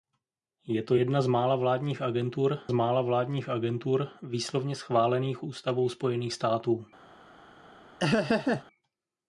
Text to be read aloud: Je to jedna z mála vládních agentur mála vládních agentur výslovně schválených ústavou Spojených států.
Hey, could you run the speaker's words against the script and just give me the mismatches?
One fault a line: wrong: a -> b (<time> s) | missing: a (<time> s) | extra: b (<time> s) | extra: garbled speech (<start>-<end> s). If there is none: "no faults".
no faults